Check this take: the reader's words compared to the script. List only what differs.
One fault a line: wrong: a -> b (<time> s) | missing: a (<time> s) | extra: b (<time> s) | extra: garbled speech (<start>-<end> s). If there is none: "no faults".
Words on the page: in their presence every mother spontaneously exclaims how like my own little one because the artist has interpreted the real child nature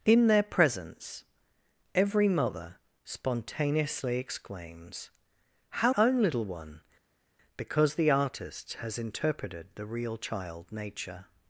missing: like my (5.9 s)